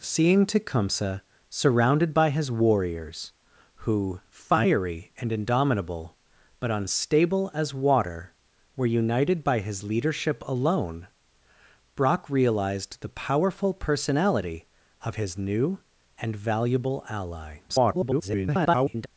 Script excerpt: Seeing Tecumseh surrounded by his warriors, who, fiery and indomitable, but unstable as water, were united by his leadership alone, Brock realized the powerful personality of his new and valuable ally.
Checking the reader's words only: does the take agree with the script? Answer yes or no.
no